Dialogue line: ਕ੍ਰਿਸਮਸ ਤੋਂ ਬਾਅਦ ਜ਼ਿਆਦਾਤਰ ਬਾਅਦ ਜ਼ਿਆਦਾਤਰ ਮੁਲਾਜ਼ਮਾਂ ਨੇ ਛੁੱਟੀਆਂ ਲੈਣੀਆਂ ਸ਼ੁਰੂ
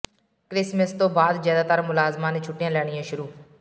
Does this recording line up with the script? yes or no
no